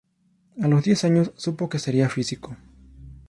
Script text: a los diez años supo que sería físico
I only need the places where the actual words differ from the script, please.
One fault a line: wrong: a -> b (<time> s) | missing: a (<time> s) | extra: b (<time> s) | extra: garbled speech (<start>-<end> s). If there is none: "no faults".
no faults